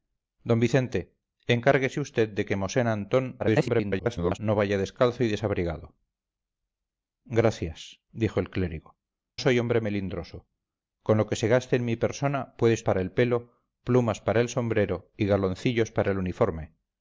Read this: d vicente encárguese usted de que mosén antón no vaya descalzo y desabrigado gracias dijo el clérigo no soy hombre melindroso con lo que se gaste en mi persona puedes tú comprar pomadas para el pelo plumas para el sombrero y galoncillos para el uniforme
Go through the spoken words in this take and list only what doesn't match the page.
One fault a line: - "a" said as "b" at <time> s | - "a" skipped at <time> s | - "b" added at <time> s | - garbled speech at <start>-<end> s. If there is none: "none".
- garbled speech at 3.4-4.4 s
- "no" skipped at 9.0 s
- "tú comprar pomadas" skipped at 12.8 s